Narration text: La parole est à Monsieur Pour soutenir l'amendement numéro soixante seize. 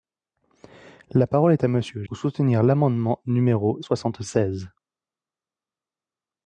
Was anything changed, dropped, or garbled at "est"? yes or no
no